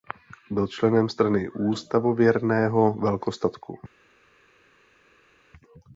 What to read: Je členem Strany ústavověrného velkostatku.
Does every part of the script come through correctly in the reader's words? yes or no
no